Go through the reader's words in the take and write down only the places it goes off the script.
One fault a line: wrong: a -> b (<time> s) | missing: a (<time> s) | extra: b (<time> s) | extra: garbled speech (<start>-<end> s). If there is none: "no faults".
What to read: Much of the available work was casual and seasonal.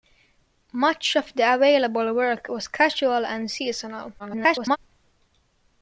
extra: garbled speech (4.2-4.8 s)